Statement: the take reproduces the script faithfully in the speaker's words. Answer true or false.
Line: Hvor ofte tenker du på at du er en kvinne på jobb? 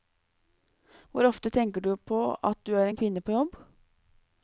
true